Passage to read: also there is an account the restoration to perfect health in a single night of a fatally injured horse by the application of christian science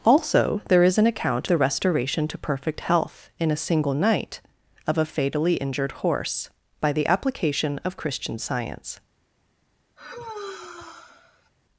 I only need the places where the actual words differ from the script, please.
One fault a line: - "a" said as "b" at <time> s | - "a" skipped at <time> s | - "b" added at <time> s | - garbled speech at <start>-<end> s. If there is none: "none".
none